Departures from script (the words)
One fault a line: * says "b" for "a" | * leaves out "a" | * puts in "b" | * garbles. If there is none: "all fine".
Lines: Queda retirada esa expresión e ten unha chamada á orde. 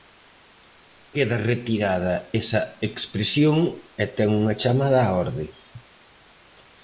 all fine